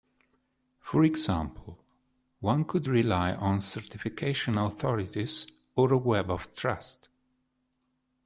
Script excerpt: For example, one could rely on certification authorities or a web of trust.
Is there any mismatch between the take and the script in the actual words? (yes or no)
no